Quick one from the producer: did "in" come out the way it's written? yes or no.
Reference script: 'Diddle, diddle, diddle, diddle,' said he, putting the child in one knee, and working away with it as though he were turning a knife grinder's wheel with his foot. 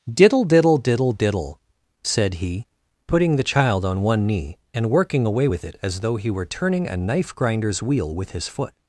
no